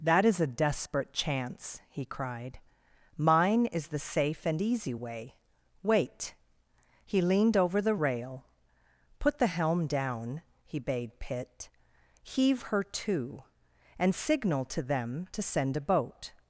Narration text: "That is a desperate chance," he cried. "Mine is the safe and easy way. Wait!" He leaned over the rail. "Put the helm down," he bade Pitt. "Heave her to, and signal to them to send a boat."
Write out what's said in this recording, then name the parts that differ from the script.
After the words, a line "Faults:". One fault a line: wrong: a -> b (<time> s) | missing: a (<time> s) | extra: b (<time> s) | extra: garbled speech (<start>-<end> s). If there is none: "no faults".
"That is a desperate chance," he cried. "Mine is the safe and easy way. Wait!" He leaned over the rail. "Put the helm down," he bade Pitt. "Heave her to, and signal to them to send a boat."
Faults:
no faults